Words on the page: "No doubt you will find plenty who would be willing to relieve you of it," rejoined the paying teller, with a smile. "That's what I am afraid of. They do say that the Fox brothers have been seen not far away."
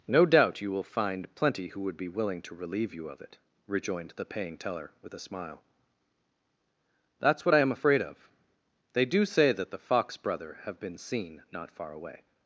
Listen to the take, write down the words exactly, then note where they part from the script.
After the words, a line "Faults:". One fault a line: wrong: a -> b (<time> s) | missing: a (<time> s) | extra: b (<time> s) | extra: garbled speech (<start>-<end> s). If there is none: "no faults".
"No doubt you will find plenty who would be willing to relieve you of it," rejoined the paying teller, with a smile. "That's what I am afraid of. They do say that the Fox brother have been seen not far away."
Faults:
wrong: brothers -> brother (10.2 s)